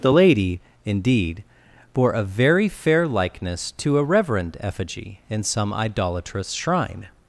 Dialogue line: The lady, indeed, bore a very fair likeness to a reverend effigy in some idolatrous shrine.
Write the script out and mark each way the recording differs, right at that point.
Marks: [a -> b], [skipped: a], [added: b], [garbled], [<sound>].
The lady, indeed, bore a very fair likeness to a reverend effigy in some idolatrous shrine.